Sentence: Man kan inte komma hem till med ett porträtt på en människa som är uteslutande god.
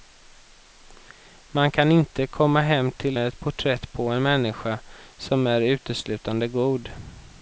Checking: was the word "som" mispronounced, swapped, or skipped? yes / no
no